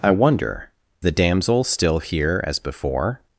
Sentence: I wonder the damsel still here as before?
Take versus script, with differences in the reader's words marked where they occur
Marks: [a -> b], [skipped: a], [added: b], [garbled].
I wonder the damsel still here as before?